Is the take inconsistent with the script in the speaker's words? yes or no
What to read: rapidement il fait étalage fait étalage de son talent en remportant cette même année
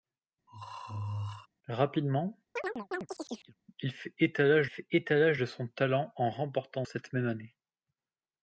no